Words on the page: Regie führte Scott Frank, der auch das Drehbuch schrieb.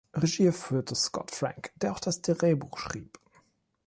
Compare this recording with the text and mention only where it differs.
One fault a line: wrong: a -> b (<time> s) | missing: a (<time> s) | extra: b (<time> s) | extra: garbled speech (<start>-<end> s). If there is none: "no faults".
no faults